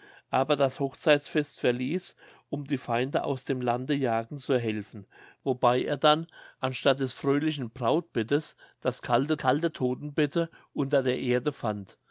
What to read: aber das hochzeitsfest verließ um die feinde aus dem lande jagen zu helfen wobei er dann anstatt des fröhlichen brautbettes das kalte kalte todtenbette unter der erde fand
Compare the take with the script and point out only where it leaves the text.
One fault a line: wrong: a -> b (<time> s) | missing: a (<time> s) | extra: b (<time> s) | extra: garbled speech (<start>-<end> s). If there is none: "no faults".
no faults